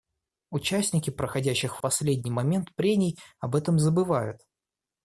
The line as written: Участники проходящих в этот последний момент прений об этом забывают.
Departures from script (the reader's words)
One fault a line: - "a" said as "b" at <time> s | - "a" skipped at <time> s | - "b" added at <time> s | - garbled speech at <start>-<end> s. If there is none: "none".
- "этот" skipped at 1.8 s